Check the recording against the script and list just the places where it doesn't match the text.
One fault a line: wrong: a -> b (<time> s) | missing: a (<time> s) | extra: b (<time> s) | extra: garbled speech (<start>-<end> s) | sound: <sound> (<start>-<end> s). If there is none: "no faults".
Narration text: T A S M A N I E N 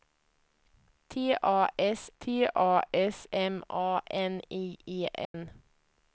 extra: t A S (2.2 s)
sound: dropout (5.2-5.3 s)